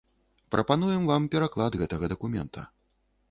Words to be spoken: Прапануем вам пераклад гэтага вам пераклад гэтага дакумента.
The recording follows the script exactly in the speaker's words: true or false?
false